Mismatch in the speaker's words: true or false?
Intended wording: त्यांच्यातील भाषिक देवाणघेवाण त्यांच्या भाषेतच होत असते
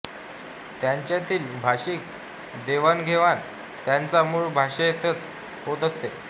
true